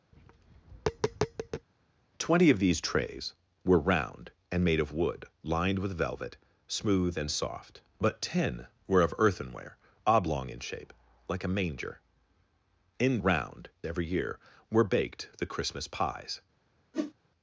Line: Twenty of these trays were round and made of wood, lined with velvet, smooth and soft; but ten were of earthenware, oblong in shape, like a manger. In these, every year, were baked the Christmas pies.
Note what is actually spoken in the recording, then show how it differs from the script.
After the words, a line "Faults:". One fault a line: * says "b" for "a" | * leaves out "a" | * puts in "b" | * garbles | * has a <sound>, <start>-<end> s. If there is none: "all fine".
Twenty of these trays were round and made of wood, lined with velvet, smooth and soft; but ten were of earthenware, oblong in shape, like a manger. In round, every year, were baked the Christmas pies.
Faults:
* has a tap, 0.1-1.7 s
* says "round" for "these"
* has a whoosh, 16.9-17.1 s